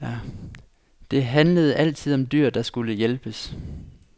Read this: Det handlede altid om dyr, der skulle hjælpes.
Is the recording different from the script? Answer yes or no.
no